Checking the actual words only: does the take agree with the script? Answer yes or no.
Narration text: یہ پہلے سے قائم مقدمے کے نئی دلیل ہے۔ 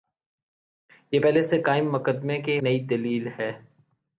yes